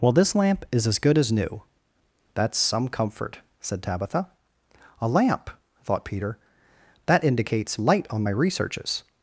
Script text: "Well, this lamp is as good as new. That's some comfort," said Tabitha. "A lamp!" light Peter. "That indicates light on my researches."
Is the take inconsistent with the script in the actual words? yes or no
yes